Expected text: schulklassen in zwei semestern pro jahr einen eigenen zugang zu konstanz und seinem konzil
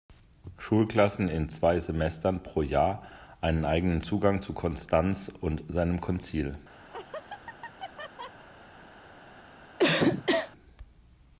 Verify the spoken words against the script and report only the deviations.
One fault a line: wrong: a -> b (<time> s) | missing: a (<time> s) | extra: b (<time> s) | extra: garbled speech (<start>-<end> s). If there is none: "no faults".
no faults